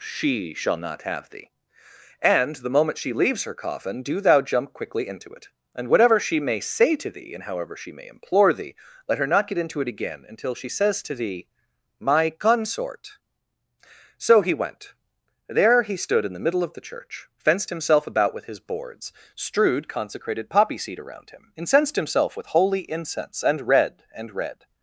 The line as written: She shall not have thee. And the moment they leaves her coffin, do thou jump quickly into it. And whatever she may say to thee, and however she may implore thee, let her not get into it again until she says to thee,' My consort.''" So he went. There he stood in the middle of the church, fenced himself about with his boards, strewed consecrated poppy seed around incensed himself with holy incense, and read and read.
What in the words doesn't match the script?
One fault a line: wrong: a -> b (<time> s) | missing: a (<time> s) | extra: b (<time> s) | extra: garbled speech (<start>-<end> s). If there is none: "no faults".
wrong: they -> she (3.0 s)
extra: him (21.3 s)